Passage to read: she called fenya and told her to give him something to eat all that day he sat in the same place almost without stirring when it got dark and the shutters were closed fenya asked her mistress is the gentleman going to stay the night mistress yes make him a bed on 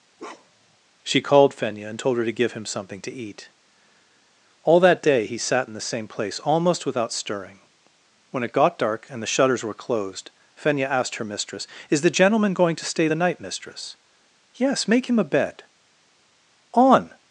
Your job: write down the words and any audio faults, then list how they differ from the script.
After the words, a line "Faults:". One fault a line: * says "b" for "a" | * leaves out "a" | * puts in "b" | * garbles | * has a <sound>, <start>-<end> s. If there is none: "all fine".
she called fenya and told her to give him something to eat all that day he sat in the same place almost without stirring when it got dark and the shutters were closed fenya asked her mistress is the gentleman going to stay the night mistress yes make him a bed on
Faults:
* has a bark, 0.2-0.8 s